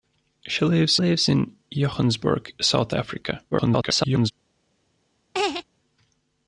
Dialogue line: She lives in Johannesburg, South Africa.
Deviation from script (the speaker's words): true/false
true